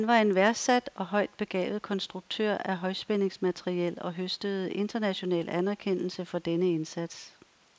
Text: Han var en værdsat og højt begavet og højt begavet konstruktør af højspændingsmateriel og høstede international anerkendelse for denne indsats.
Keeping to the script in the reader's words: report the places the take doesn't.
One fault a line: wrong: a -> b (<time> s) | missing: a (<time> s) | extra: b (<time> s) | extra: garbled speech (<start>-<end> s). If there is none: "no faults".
missing: og højt begavet (1.8 s)